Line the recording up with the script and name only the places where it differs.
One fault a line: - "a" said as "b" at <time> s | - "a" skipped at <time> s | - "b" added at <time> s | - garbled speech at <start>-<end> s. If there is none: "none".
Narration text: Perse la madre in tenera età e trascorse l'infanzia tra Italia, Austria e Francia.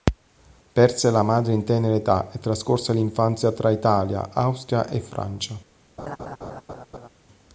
none